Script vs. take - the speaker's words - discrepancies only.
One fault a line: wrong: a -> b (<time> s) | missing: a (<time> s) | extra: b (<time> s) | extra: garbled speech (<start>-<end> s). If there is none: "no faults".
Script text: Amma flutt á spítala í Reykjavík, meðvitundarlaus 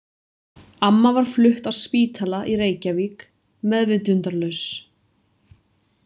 extra: var (1.2 s)